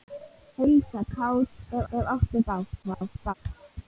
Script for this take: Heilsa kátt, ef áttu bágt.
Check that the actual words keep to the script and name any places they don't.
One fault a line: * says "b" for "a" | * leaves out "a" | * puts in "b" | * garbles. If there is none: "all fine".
* puts in "ef"
* garbles